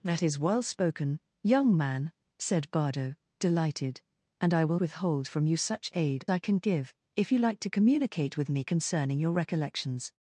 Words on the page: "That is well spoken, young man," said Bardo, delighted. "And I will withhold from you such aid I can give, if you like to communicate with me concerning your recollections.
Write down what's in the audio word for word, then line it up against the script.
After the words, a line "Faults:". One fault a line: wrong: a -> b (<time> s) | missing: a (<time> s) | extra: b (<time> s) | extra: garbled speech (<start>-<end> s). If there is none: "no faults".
"That is well spoken, young man," said Bardo, delighted. "And I will withhold from you such aid I can give, if you like to communicate with me concerning your recollections.
Faults:
no faults